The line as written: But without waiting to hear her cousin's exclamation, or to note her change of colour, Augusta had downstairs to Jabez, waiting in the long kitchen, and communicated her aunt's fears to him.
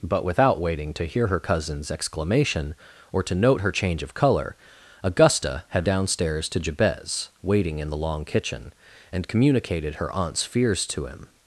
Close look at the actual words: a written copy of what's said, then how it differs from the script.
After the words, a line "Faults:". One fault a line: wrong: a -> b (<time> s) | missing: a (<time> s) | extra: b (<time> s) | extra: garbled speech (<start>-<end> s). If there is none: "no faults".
But without waiting to hear her cousin's exclamation, or to note her change of colour, Augusta had downstairs to Jabez, waiting in the long kitchen, and communicated her aunt's fears to him.
Faults:
no faults